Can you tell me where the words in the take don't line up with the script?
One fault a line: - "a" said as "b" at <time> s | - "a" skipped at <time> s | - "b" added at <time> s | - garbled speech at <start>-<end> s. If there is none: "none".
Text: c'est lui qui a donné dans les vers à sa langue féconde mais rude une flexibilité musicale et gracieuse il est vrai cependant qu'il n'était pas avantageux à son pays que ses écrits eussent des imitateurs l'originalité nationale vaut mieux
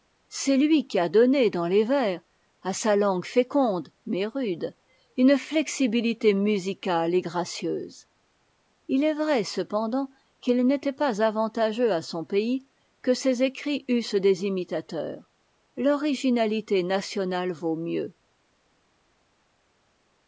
none